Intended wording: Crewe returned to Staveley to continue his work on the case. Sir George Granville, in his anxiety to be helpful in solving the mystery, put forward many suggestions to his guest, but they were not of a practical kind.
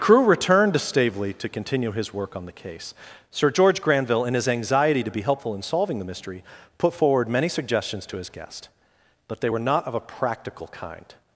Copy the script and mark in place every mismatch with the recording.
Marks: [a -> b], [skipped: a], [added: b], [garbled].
Crewe returned to Staveley to continue his work on the case. Sir George Granville, in his anxiety to be helpful in solving the mystery, put forward many suggestions to his guest, but they were not of a practical kind.